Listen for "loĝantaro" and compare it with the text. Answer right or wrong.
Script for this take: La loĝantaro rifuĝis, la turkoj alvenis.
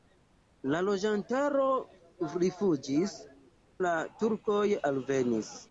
right